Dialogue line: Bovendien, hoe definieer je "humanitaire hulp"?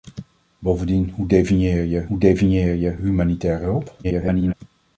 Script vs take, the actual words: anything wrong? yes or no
yes